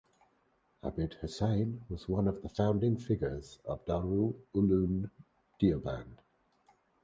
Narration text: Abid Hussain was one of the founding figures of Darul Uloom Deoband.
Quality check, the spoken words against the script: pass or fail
pass